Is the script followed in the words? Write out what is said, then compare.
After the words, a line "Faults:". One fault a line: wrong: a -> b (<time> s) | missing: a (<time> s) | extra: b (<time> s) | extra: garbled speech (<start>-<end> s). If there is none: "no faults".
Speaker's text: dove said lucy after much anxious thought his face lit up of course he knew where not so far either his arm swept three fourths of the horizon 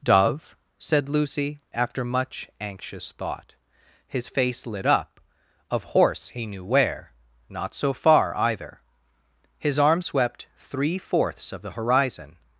dove said lucy after much anxious thought his face lit up of horse he knew where not so far either his arm swept three fourths of the horizon
Faults:
wrong: course -> horse (5.8 s)